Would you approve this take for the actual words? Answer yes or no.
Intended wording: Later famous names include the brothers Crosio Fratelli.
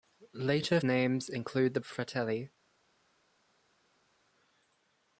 no